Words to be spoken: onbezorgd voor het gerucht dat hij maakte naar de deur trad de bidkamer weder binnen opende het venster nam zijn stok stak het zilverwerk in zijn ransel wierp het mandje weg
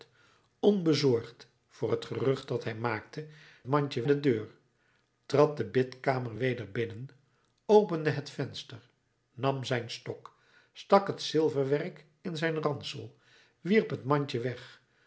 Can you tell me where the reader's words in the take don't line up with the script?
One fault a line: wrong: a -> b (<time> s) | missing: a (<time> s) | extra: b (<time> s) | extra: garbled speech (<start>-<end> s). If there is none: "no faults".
wrong: naar -> mandje (3.7 s)